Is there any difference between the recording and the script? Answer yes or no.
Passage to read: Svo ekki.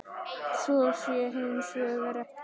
yes